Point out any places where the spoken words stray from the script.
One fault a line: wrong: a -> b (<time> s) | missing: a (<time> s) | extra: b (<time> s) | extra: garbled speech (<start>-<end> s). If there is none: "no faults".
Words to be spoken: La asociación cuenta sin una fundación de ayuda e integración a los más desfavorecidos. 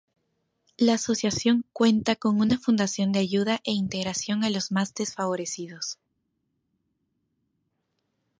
wrong: sin -> con (2.1 s)